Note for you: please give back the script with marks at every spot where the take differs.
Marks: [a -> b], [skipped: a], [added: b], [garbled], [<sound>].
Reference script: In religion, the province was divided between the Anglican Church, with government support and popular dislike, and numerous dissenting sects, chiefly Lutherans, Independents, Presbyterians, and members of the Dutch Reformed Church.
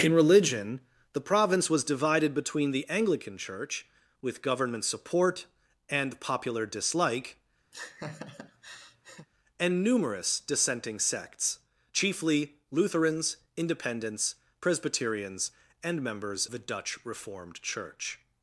In religion, the province was divided between the Anglican Church, with government support and popular dislike, [laugh] and numerous dissenting sects, chiefly Lutherans, Independents, Presbyterians, and members [skipped: of] the Dutch Reformed Church.